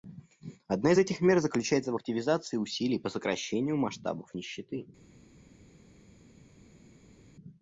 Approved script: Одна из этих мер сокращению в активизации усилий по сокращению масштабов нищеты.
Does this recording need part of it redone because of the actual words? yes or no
yes